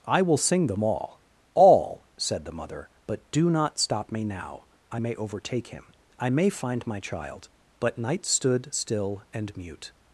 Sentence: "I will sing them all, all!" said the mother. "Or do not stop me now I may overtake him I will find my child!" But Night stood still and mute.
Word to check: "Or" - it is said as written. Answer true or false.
false